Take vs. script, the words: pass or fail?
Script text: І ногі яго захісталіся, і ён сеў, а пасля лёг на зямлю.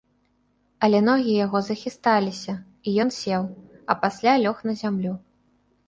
fail